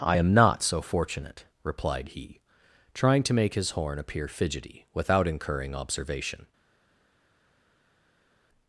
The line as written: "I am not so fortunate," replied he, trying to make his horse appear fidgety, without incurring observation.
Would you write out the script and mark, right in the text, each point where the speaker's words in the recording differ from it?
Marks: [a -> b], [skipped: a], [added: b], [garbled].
"I am not so fortunate," replied he, trying to make his [horse -> horn] appear fidgety, without incurring observation.